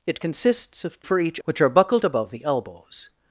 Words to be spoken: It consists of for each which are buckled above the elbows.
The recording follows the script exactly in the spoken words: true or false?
true